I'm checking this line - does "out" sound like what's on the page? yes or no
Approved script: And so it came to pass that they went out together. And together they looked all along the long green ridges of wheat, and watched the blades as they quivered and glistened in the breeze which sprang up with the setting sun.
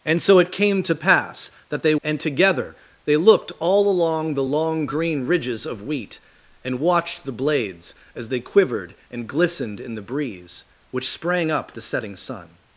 no